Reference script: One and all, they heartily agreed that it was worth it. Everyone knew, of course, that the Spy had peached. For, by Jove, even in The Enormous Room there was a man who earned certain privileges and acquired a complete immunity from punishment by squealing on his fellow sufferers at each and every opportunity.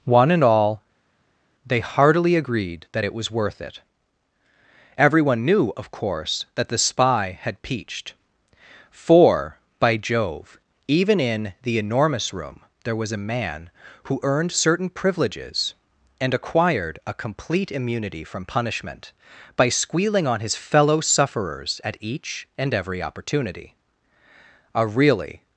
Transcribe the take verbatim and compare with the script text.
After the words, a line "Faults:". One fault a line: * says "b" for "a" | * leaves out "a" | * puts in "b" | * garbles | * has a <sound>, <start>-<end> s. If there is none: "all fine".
One and all, they heartily agreed that it was worth it. Everyone knew, of course, that the Spy had peached. For, by Jove, even in The Enormous Room there was a man who earned certain privileges and acquired a complete immunity from punishment by squealing on his fellow sufferers at each and every opportunity. A really
Faults:
* puts in "A really"